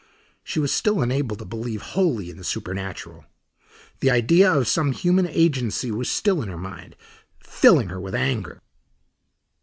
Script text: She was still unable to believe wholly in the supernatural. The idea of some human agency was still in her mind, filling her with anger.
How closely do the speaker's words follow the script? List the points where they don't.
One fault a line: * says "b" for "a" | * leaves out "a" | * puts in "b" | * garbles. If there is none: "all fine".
all fine